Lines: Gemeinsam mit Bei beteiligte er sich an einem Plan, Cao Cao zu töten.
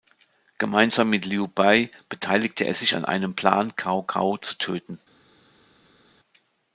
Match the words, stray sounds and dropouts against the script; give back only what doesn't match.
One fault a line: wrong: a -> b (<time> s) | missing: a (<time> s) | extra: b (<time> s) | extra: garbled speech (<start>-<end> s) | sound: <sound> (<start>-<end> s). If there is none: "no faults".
extra: Liu (1.2 s)